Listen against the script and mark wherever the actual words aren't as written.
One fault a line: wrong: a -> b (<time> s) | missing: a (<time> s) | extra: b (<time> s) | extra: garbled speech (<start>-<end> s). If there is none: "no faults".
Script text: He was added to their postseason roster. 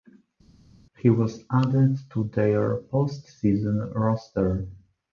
no faults